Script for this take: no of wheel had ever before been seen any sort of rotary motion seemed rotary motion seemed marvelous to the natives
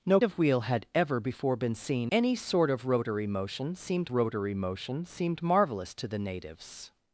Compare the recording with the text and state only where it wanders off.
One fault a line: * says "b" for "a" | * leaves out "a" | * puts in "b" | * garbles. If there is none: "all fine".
all fine